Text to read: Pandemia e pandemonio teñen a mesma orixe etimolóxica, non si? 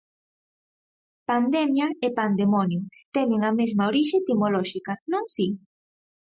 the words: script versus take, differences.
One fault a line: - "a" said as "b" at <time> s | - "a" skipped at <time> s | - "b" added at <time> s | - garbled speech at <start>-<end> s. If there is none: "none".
none